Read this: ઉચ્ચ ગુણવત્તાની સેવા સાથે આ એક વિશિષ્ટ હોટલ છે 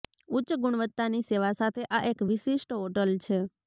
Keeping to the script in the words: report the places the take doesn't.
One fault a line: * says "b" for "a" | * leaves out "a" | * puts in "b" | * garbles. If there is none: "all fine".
all fine